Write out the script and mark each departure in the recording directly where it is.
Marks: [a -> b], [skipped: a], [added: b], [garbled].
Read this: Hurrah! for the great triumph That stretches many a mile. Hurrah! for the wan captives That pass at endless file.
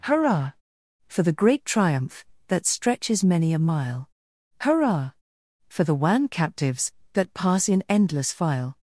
Hurrah! for the great triumph That stretches many a mile. Hurrah! for the wan captives That pass [at -> in] endless file.